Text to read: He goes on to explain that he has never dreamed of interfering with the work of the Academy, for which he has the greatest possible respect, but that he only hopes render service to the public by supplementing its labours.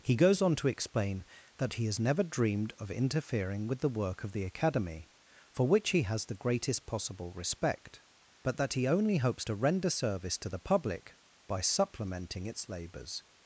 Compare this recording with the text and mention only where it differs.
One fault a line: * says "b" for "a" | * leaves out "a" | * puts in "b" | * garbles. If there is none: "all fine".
* puts in "to"